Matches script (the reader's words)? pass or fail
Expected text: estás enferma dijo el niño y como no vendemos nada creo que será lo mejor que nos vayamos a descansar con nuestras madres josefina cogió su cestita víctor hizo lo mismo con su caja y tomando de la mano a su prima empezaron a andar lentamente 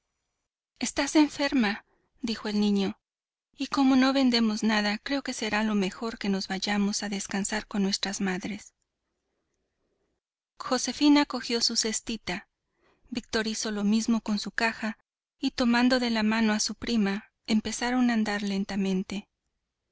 pass